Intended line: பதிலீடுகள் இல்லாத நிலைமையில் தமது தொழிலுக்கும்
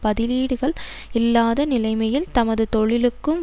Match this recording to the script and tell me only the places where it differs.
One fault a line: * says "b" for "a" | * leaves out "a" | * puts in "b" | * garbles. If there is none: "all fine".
all fine